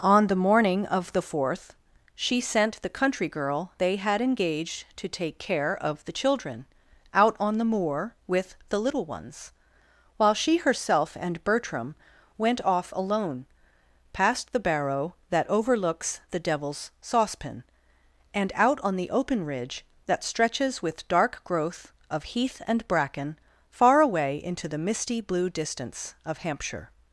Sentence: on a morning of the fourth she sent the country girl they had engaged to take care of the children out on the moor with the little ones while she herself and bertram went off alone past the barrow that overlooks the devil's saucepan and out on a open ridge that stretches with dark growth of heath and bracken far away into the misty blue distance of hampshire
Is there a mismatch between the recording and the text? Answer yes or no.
yes